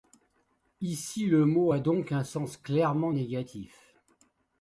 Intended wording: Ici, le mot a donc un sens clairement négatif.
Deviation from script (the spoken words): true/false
false